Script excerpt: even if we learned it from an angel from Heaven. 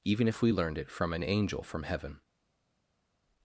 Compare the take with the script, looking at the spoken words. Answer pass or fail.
pass